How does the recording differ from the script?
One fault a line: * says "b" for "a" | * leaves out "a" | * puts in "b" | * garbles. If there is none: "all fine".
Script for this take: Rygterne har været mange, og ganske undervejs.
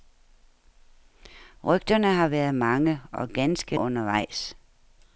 all fine